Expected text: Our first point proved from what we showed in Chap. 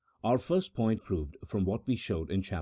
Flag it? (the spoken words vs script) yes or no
no